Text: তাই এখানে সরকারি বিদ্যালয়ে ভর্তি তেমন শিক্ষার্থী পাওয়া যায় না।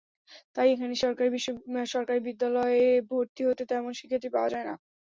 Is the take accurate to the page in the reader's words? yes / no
no